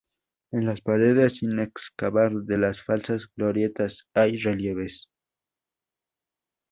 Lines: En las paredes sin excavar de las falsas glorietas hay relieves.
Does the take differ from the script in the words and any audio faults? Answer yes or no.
no